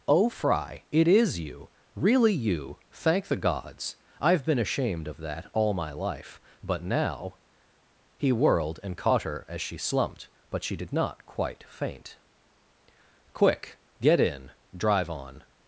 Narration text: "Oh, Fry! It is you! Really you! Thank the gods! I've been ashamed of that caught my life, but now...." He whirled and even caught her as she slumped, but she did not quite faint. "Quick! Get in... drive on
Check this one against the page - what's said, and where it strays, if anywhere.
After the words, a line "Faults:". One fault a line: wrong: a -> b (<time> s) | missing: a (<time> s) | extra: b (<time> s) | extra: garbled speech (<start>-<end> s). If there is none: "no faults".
"Oh, Fry! It is you! Really you! Thank the gods! I've been ashamed of that all my life, but now...." He whirled and caught her as she slumped, but she did not quite faint. "Quick! Get in... drive on
Faults:
wrong: caught -> all (5.5 s)
missing: even (9.0 s)